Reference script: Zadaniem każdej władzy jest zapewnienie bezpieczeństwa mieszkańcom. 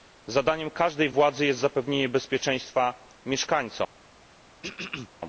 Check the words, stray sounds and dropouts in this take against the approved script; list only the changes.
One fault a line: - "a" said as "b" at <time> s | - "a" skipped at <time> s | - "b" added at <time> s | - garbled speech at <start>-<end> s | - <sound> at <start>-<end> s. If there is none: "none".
- throat clearing at 4.6-5.1 s